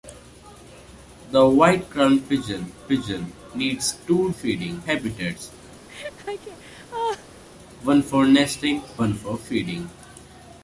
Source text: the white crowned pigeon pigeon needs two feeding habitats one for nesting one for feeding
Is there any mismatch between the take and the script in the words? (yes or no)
no